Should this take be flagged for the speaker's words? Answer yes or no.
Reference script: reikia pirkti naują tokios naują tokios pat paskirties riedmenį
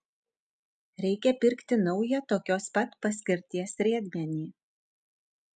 yes